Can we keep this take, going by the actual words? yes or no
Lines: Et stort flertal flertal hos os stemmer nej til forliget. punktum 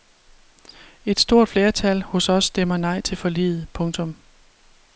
no